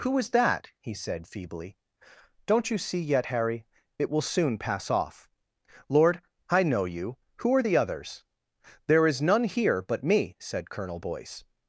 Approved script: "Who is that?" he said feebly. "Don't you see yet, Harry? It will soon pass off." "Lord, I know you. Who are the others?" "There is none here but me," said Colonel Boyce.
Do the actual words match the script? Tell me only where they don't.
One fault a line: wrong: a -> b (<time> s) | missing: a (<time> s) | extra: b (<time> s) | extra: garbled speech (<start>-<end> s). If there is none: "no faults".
no faults